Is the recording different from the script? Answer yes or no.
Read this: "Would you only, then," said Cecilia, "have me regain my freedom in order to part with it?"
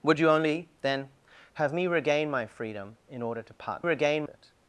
yes